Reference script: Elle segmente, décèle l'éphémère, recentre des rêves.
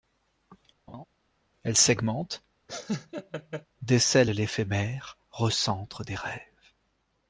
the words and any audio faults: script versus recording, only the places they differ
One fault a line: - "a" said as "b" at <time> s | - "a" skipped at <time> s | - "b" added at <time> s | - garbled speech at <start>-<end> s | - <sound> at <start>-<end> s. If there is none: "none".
- laugh at 0.9-1.0 s
- laugh at 2.7-3.7 s